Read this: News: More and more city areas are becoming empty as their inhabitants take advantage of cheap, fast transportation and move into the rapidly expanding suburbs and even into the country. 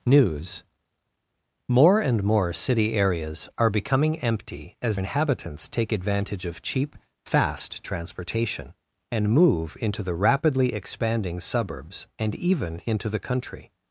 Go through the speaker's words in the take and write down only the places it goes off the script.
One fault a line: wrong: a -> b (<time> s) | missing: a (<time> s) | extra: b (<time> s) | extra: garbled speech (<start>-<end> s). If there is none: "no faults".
missing: their (5.0 s)